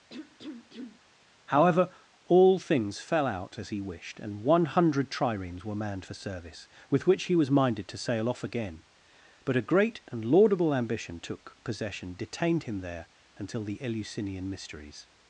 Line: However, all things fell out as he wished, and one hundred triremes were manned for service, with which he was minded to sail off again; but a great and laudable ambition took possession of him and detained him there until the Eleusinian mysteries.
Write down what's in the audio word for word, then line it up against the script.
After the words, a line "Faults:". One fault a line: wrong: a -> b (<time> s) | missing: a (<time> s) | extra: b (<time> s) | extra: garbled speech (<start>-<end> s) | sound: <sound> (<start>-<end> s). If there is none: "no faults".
However, all things fell out as he wished, and one hundred triremes were manned for service, with which he was minded to sail off again; but a great and laudable ambition took possession detained him there until the Eleusinian mysteries.
Faults:
sound: cough (0.1-1.0 s)
missing: of him and (12.1 s)